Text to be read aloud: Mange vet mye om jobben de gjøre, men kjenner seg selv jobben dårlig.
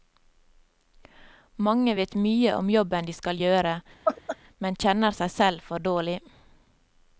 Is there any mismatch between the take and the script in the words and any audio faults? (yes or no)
yes